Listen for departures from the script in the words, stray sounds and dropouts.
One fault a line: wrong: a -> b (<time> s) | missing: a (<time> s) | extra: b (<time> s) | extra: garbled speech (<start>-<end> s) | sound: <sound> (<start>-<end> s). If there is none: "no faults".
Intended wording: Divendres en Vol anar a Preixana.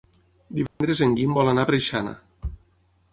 sound: dropout (0.7-0.8 s)
extra: Guim (1.2 s)